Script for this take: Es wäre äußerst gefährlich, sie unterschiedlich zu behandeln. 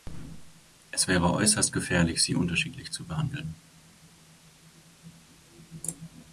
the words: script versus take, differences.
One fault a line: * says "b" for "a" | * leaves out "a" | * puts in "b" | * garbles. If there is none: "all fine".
all fine